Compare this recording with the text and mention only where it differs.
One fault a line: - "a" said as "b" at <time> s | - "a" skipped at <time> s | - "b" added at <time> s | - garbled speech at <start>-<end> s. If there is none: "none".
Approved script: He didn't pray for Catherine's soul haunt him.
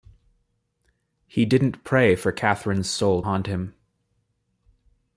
none